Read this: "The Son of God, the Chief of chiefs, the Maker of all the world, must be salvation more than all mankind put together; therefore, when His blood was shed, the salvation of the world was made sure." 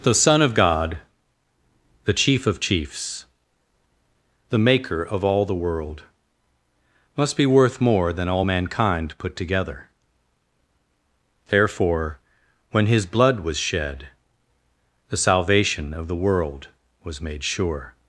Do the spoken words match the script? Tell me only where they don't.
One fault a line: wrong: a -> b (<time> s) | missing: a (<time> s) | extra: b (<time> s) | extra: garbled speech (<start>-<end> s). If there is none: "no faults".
wrong: salvation -> worth (7.5 s)